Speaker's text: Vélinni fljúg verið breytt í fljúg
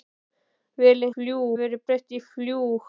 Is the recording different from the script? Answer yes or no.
no